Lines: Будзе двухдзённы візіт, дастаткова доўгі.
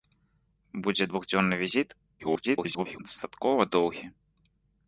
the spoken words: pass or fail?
fail